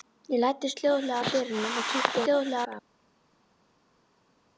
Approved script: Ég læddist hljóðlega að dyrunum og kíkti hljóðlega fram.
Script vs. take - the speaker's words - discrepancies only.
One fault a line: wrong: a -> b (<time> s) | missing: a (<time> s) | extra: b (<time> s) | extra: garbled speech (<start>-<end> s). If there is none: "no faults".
no faults